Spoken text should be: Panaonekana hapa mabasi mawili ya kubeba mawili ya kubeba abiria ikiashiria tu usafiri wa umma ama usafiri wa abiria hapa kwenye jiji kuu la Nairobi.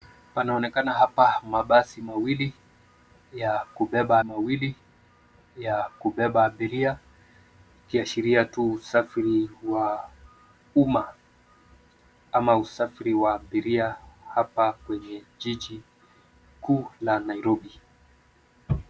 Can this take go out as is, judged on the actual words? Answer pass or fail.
pass